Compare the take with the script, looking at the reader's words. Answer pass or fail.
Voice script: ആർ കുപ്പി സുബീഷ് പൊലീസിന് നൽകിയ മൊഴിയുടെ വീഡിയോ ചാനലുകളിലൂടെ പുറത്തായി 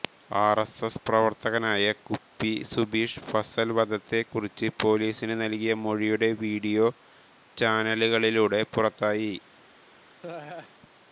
fail